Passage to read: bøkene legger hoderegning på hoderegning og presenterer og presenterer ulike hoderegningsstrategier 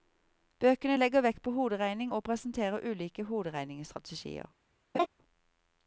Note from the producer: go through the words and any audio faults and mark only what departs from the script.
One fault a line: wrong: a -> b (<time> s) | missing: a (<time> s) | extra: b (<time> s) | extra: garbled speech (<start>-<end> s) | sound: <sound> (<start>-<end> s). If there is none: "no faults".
wrong: hoderegning -> vekt (1.3 s)
missing: og presenterer (2.9 s)
sound: laugh (4.9-5.1 s)